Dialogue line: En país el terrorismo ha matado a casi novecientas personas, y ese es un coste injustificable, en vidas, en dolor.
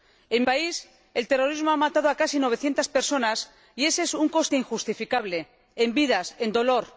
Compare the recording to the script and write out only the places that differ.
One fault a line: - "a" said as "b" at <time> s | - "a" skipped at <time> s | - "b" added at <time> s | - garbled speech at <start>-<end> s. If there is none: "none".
none